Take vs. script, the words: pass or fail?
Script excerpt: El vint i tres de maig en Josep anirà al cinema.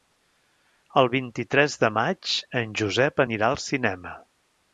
pass